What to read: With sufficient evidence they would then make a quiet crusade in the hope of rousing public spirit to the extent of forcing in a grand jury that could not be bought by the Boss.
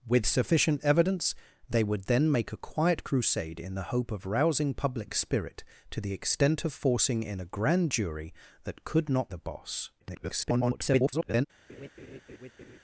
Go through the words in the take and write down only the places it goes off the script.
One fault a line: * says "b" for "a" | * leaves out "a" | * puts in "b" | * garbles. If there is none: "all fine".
* leaves out "be bought by"
* garbles